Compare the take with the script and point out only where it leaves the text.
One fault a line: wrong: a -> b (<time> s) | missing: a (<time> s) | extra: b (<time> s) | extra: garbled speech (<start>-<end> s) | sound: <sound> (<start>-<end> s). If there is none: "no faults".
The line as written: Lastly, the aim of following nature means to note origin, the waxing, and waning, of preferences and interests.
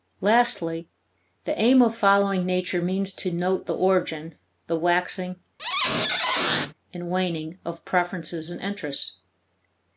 extra: the (3.7 s)
sound: squeak (5.6-6.7 s)